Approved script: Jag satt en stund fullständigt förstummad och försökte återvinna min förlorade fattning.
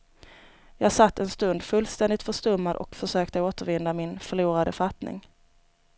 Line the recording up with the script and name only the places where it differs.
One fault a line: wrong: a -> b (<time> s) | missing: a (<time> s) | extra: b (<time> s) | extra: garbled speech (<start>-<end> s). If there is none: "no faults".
no faults